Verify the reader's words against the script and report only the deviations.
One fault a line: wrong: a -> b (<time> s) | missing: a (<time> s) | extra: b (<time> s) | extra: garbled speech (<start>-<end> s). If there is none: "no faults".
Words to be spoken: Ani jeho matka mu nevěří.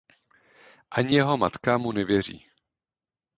no faults